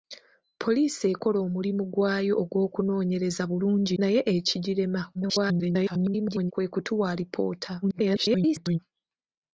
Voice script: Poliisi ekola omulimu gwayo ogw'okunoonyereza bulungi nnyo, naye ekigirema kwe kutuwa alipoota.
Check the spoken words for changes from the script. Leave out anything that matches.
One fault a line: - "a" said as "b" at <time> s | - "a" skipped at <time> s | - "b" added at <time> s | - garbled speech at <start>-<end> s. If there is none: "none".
- "nnyo" skipped at 3.9 s
- garbled speech at 5.1-6.5 s
- garbled speech at 7.8-8.8 s